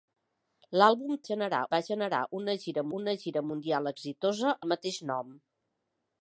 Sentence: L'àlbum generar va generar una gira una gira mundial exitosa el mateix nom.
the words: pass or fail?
pass